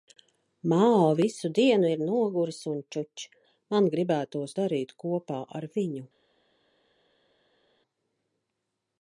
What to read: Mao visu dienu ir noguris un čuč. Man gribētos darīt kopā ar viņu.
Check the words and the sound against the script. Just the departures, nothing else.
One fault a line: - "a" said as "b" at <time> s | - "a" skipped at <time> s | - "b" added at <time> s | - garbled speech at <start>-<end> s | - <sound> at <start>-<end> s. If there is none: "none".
none